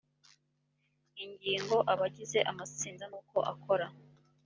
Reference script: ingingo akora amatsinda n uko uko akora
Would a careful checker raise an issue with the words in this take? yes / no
yes